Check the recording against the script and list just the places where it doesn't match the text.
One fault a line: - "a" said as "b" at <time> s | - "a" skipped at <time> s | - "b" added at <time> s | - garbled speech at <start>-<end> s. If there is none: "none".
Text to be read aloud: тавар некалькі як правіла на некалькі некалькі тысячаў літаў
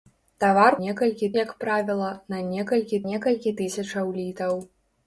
none